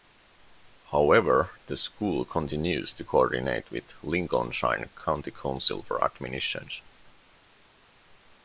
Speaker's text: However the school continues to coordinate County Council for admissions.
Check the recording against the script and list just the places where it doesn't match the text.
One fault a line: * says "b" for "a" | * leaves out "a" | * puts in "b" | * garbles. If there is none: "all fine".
* puts in "with Lincolnshire"